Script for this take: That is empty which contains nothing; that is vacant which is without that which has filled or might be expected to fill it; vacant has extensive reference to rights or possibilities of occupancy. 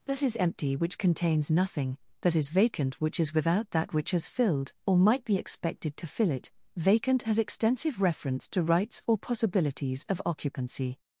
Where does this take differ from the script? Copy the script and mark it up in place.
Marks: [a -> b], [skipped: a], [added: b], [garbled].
That is empty which contains nothing; that is vacant which is without that which has filled or might be expected to fill it; vacant has extensive reference to rights or possibilities of occupancy.